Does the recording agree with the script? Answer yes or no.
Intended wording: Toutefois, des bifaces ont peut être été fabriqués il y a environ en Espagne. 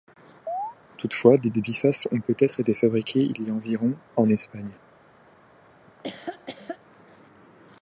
no